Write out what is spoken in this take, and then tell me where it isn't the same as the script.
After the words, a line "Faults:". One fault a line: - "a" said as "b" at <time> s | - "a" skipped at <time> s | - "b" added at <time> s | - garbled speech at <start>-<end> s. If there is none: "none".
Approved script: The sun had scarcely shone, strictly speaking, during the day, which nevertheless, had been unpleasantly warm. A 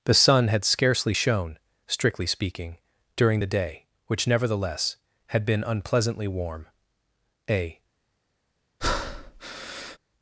The sun had scarcely shone, strictly speaking, during the day, which nevertheless, had been unpleasantly warm. A
Faults:
none